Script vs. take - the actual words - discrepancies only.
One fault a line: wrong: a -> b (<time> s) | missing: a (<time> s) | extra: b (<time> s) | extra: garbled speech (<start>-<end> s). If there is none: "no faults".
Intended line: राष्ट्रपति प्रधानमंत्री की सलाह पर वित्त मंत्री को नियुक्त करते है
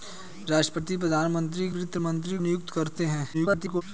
missing: की सलाह पर (1.7 s)
missing: को (2.4 s)
extra: garbled speech (3.3-3.8 s)